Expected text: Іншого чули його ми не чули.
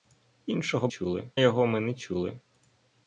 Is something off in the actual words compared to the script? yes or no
no